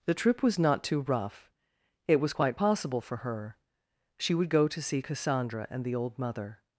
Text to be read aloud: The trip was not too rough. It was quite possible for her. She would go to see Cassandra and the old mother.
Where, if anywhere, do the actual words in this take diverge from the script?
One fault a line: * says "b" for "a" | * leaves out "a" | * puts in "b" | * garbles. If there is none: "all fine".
all fine